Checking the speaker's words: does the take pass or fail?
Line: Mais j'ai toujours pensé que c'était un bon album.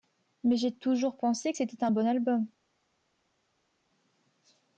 pass